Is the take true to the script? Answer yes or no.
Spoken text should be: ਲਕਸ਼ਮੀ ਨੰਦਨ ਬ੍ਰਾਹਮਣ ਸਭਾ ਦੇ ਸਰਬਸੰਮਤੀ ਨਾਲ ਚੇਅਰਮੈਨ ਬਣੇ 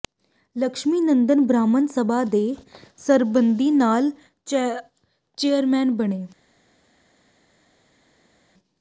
yes